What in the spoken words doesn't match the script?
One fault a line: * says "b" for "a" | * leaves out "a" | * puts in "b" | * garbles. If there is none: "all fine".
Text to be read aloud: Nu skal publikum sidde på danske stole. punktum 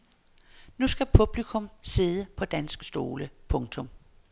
all fine